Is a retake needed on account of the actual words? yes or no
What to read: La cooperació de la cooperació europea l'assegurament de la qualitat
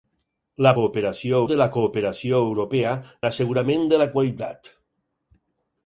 no